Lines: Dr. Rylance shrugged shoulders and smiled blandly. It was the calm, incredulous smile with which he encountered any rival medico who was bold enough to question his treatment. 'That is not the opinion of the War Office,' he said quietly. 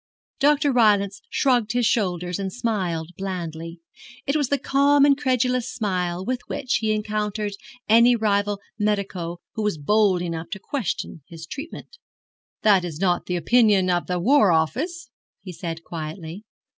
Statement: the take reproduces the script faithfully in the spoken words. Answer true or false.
false